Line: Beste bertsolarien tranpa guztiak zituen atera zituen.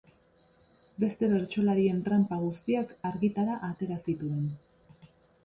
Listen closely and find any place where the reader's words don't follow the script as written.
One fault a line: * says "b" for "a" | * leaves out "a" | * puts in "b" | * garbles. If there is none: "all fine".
* says "argitara" for "zituen"